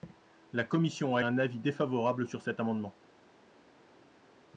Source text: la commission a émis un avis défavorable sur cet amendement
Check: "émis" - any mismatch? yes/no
yes